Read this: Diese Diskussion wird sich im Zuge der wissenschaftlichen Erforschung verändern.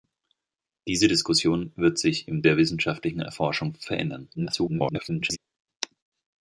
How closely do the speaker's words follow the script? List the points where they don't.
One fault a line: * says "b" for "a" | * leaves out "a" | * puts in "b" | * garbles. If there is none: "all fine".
* leaves out "Zuge"
* garbles